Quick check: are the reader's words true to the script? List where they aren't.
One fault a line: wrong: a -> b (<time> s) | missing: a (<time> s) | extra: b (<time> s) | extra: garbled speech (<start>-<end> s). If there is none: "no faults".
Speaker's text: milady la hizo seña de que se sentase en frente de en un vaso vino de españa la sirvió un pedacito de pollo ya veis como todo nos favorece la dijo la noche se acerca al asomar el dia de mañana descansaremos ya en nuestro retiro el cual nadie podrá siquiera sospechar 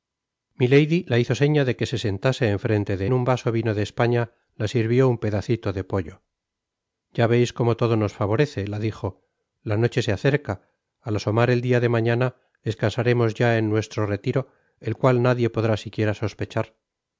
no faults